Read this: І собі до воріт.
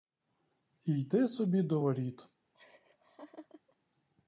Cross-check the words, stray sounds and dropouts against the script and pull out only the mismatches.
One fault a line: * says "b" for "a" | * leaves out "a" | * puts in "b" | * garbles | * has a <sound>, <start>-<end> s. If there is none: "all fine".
* puts in "йде"
* has a laugh, 2.5-3.8 s